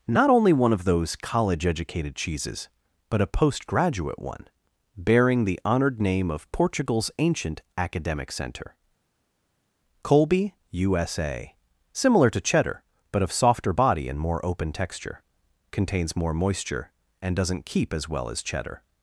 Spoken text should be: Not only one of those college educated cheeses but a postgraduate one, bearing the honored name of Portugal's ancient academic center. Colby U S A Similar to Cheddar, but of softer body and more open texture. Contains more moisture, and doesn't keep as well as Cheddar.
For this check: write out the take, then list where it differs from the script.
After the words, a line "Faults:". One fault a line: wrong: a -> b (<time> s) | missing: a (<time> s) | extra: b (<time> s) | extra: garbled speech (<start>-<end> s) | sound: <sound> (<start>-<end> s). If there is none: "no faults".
Not only one of those college educated cheeses but a postgraduate one, bearing the honored name of Portugal's ancient academic center. Colby U S A Similar to Cheddar, but of softer body and more open texture. Contains more moisture, and doesn't keep as well as Cheddar.
Faults:
no faults